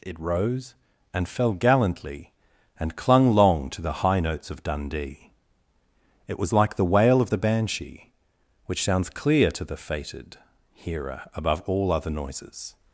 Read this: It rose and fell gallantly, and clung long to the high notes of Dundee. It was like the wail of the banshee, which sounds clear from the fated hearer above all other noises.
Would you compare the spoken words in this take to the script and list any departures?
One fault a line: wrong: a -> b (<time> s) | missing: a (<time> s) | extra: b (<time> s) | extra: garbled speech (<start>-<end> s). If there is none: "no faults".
wrong: from -> to (9.5 s)